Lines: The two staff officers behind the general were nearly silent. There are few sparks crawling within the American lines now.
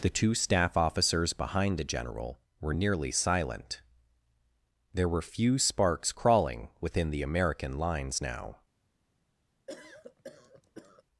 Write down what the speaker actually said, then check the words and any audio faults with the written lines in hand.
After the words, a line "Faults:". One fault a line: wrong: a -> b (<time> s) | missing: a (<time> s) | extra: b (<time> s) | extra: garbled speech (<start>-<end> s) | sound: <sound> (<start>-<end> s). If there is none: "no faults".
The two staff officers behind the general were nearly silent. There were few sparks crawling within the American lines now.
Faults:
wrong: are -> were (5.1 s)
sound: cough (9.7-11.0 s)